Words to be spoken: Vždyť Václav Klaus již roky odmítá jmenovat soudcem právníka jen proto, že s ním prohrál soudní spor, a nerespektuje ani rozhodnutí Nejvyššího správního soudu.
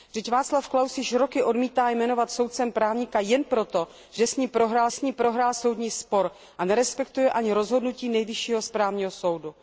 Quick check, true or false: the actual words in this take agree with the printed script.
false